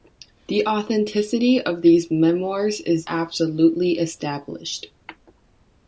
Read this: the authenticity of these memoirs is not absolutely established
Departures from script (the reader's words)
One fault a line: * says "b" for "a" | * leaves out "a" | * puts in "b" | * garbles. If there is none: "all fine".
* leaves out "not"